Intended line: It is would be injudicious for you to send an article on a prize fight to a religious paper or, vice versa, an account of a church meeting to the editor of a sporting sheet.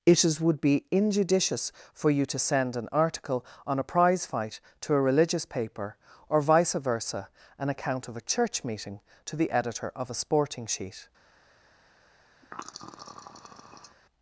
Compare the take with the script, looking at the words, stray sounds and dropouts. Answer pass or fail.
fail